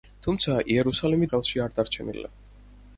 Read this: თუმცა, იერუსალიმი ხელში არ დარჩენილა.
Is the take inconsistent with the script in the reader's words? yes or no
no